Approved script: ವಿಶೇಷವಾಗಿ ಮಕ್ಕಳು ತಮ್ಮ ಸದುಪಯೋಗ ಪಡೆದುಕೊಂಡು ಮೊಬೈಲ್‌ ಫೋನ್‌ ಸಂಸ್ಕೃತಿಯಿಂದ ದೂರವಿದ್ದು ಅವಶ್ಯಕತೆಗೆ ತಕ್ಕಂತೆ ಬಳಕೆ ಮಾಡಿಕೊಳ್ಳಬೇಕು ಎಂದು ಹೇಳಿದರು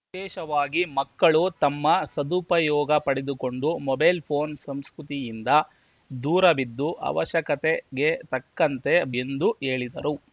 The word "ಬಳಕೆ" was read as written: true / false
false